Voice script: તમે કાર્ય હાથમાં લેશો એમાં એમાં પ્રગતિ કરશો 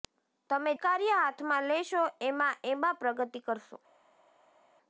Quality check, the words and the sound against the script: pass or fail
pass